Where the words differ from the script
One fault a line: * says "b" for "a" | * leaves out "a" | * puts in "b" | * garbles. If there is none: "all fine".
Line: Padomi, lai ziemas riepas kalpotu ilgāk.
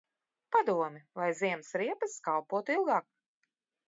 all fine